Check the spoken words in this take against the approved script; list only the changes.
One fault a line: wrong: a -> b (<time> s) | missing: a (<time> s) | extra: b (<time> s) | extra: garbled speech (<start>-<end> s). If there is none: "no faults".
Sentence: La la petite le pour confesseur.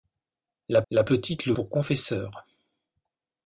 no faults